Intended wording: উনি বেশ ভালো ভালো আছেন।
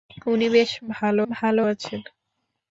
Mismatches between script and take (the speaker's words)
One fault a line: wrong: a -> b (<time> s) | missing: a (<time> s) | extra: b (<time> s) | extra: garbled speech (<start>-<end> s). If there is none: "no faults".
no faults